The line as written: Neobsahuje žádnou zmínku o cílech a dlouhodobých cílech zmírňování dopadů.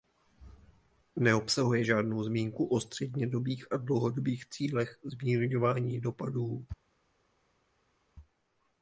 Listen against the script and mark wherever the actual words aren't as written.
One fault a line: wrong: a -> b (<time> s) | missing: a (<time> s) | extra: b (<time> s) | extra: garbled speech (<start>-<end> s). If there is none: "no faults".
wrong: cílech -> střednědobých (2.8 s)